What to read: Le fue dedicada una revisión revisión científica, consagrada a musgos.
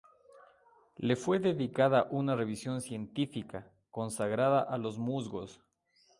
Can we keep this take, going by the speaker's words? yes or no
no